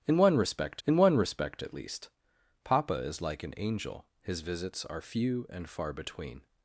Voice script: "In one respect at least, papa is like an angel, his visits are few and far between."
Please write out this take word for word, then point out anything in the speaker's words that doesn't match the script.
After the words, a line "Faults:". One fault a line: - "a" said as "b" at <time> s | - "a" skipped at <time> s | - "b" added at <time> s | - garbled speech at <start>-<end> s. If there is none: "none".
"In one respect in one respect at least, papa is like an angel, his visits are few and far between."
Faults:
- "in one respect" added at 0.9 s